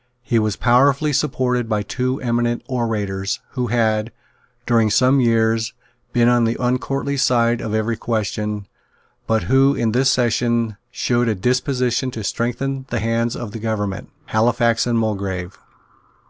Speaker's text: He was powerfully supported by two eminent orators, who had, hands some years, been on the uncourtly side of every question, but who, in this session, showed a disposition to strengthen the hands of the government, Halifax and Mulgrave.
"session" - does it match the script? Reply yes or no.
yes